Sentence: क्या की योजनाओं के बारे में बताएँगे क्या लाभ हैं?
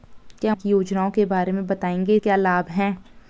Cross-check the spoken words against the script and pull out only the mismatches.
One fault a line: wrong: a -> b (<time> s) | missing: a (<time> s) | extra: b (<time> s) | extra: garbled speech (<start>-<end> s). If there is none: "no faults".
no faults